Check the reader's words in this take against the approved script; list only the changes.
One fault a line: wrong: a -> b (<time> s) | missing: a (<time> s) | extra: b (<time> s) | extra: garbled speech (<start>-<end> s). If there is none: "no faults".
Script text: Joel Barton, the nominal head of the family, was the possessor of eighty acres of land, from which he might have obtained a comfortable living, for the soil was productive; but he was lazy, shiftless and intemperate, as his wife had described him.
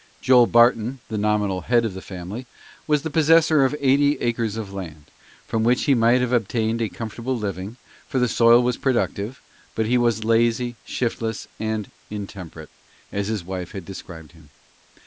no faults